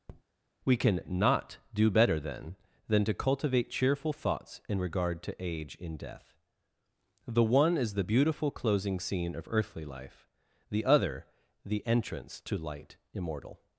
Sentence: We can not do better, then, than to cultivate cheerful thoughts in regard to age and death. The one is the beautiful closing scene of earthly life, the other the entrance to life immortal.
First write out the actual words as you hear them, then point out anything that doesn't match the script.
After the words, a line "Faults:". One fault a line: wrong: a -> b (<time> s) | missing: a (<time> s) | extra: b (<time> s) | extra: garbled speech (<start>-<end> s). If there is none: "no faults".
We can not do better, then, than to cultivate cheerful thoughts in regard to age in death. The one is the beautiful closing scene of earthly life, the other the entrance to light immortal.
Faults:
wrong: and -> in (5.7 s)
wrong: life -> light (12.6 s)